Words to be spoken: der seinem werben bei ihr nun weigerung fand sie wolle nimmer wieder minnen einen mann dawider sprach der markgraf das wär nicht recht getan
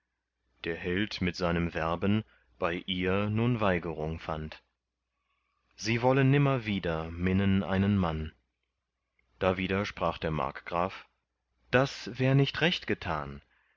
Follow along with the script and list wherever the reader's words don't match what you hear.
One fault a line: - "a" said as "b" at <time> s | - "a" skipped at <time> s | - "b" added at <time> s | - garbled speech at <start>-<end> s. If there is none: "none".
- "held mit" added at 0.8 s